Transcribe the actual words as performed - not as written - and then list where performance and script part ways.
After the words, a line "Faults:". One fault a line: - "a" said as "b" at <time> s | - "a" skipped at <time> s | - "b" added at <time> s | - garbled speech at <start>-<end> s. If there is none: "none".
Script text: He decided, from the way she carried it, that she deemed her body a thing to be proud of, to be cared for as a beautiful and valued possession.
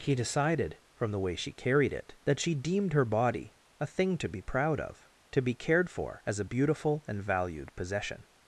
He decided, from the way she carried it, that she deemed her body a thing to be proud of, to be cared for as a beautiful and valued possession.
Faults:
none